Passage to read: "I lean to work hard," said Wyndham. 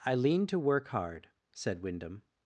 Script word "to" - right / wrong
right